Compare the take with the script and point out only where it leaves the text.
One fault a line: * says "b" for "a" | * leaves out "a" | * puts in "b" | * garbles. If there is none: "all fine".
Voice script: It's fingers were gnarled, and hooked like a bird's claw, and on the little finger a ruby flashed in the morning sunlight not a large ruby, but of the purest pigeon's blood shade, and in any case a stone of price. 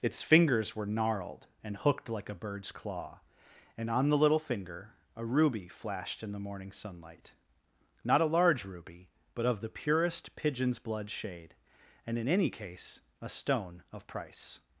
all fine